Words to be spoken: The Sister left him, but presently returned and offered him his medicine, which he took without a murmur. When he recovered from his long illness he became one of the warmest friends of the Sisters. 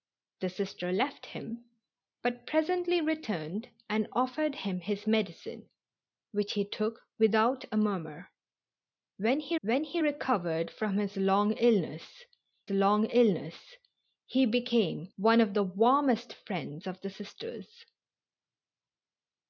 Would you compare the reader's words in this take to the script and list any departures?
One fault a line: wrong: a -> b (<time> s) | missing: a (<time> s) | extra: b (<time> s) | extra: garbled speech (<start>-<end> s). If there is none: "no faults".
extra: when he (9.6 s)
extra: long illness (12.7 s)